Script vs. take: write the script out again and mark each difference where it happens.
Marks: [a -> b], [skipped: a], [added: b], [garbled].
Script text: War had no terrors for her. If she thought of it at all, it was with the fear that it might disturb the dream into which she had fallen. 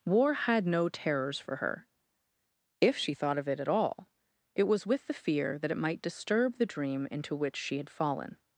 War had no terrors for her. If she thought of it at all, it was with the fear that it might disturb the dream into which she had fallen.